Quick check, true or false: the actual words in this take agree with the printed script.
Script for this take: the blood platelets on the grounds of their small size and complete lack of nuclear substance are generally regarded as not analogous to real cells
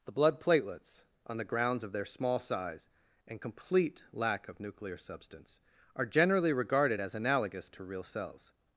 false